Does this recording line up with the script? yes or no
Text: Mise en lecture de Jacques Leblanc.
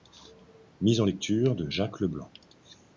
yes